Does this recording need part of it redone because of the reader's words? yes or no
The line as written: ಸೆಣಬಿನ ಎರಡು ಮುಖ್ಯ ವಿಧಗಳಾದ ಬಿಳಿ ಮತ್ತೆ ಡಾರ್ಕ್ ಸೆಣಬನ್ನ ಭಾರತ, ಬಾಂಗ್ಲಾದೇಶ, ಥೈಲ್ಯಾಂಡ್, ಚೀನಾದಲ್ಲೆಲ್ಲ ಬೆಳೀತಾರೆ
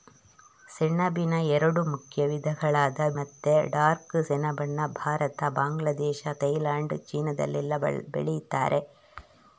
yes